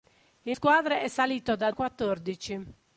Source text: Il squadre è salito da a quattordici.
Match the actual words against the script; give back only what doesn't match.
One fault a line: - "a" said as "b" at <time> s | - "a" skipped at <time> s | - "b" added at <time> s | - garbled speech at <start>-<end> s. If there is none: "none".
none